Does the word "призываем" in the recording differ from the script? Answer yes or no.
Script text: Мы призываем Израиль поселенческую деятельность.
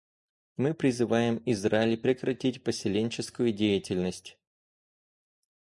no